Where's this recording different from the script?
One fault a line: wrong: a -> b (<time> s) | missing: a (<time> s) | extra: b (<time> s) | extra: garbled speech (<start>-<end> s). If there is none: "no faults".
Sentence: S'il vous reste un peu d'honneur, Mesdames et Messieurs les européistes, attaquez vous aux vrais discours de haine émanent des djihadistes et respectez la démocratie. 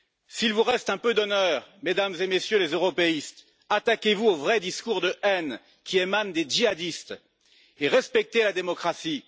extra: qui (5.8 s)